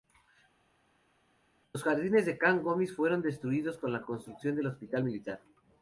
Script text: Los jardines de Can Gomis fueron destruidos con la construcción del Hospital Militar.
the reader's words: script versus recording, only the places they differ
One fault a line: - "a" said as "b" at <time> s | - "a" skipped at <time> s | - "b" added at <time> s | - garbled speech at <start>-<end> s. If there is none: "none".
none